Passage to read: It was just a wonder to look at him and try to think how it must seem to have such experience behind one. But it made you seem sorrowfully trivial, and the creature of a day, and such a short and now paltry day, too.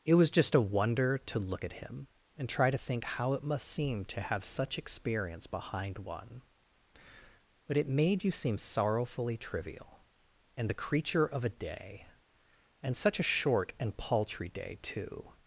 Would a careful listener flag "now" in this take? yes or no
yes